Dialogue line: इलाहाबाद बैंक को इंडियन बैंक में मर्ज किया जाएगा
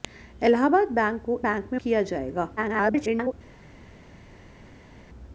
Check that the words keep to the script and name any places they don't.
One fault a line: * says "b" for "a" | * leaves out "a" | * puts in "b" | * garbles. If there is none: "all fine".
* leaves out "इंडियन"
* leaves out "मर्ज"
* garbles